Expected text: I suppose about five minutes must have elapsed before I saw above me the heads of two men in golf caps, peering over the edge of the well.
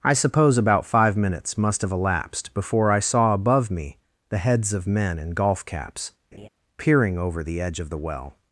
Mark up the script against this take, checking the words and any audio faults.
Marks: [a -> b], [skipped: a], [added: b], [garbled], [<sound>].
I suppose about five minutes must have elapsed before I saw above me the heads of [skipped: two] men in golf caps, [laugh] peering over the edge of the well.